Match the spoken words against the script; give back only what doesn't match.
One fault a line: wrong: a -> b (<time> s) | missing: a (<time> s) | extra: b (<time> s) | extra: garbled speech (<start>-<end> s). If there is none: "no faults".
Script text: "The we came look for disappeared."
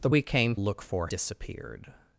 no faults